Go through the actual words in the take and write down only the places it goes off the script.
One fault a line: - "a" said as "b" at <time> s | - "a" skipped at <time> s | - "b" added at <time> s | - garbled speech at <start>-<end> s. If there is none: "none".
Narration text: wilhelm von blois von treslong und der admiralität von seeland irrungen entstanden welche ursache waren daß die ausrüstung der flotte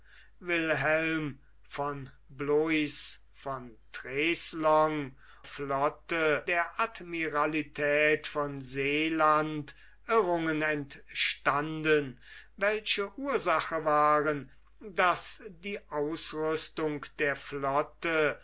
- "und" said as "flotte" at 5.4 s